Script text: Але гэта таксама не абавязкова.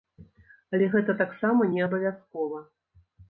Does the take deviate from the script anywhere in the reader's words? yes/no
no